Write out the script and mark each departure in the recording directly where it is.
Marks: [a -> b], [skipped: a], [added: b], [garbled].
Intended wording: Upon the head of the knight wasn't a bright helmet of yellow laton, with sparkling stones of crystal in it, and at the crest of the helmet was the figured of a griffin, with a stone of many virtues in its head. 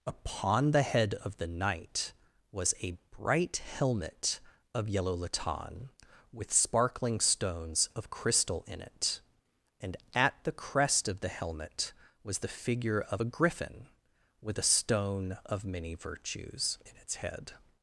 Upon the head of the knight [wasn't -> was] a bright helmet of yellow laton, with sparkling stones of crystal in it, and at the crest of the helmet was the [figured -> figure] of a griffin, with a stone of many virtues in its head.